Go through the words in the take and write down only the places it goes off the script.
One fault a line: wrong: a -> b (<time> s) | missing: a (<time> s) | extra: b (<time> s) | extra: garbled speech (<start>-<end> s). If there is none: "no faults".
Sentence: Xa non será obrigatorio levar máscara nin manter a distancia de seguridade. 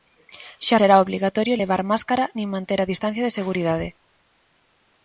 missing: non (0.8 s)